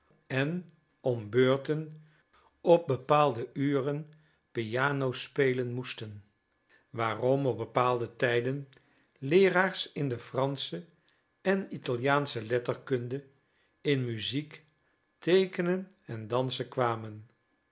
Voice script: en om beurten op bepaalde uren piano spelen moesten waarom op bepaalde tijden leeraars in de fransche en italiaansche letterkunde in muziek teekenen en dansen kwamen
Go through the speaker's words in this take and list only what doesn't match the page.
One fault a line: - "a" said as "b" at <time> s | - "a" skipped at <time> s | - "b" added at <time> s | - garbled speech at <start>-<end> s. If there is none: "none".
none